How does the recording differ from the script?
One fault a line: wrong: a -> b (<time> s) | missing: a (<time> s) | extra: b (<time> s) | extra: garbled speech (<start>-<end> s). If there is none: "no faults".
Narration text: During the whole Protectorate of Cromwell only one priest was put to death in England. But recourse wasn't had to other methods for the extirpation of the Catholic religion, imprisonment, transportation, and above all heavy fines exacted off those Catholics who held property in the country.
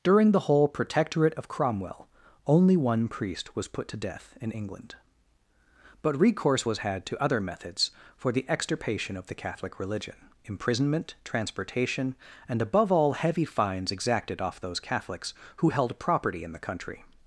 wrong: wasn't -> was (6.6 s)